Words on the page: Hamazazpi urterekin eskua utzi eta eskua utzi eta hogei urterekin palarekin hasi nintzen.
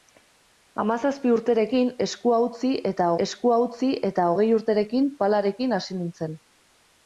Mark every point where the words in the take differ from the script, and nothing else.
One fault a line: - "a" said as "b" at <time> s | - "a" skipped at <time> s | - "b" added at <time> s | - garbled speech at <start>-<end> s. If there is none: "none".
none